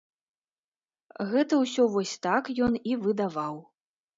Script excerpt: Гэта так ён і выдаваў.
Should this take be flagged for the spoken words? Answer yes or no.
yes